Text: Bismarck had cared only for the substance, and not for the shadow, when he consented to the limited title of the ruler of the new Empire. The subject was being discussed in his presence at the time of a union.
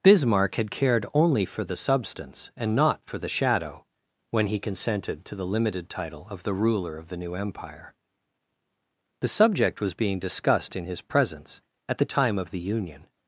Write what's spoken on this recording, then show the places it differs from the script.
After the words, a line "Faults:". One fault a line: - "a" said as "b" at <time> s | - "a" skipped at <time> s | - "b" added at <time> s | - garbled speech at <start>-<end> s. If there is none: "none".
Bismarck had cared only for the substance, and not for the shadow, when he consented to the limited title of the ruler of the new Empire. The subject was being discussed in his presence at the time of the union.
Faults:
- "a" said as "the" at 12.5 s